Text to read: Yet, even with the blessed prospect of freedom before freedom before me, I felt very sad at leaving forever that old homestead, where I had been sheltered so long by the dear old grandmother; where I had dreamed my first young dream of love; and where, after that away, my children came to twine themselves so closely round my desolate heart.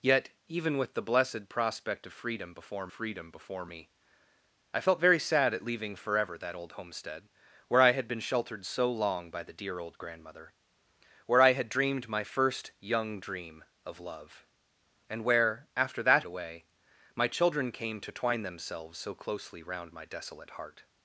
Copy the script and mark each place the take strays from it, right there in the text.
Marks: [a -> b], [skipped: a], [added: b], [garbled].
Yet, even with the blessed prospect of freedom before freedom before me, I felt very sad at leaving forever that old homestead, where I had been sheltered so long by the dear old grandmother; where I had dreamed my first young dream of love; and where, after that away, my children came to twine themselves so closely round my desolate heart.